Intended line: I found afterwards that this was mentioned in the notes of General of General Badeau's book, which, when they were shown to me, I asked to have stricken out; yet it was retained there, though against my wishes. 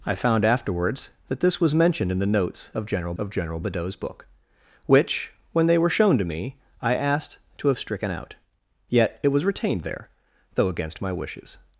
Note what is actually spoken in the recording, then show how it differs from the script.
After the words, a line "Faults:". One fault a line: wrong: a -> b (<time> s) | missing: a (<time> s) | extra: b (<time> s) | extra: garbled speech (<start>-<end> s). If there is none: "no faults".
I found afterwards that this was mentioned in the notes of General of General Badeau's book, which, when they were shown to me, I asked to have stricken out; yet it was retained there, though against my wishes.
Faults:
no faults